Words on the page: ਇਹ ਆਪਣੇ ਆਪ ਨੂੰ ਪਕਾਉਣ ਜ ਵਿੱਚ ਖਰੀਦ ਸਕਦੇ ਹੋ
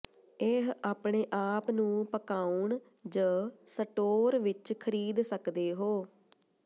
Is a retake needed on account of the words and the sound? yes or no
yes